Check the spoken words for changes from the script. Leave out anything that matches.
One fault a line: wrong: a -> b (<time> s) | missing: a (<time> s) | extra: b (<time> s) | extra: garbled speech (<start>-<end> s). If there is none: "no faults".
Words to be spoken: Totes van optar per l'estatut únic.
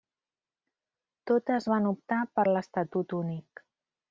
no faults